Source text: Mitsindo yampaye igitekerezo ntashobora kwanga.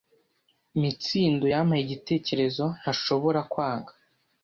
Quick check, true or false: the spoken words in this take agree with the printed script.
true